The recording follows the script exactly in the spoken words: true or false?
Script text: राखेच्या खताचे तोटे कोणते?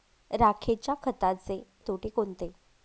true